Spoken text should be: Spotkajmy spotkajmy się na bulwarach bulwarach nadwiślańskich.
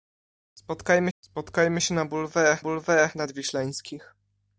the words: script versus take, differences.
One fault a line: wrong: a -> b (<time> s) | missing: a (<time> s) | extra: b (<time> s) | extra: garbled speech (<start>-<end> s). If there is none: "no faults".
no faults